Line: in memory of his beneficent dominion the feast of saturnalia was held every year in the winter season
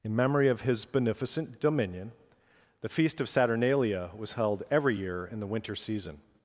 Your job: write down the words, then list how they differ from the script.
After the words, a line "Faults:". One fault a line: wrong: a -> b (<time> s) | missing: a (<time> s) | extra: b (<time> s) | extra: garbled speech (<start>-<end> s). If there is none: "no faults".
in memory of his beneficent dominion the feast of saturnalia was held every year in the winter season
Faults:
no faults